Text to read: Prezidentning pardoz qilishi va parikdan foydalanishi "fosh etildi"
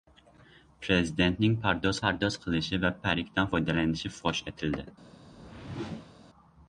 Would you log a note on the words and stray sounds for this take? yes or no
yes